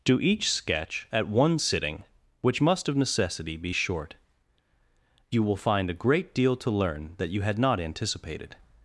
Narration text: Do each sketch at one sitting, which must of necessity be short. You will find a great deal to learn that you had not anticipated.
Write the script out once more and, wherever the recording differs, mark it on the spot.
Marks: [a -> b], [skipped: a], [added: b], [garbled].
Do each sketch at one sitting, which must of necessity be short. You will find a great deal to learn that you had not anticipated.